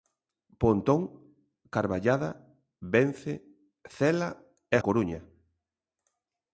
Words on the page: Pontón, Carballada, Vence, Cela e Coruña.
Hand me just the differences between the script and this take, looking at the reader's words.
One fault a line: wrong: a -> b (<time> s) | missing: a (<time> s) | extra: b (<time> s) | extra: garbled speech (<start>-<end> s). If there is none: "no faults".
no faults